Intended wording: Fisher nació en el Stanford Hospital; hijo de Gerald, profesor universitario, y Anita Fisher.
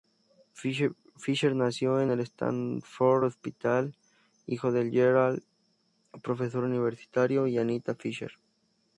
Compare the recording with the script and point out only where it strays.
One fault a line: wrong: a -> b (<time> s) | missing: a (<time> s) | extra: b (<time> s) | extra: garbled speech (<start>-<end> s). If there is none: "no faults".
no faults